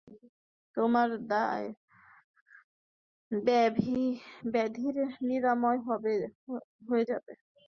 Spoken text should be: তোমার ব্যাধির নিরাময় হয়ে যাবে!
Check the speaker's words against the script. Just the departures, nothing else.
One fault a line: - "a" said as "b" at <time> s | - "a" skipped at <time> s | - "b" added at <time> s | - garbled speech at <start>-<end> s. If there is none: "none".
none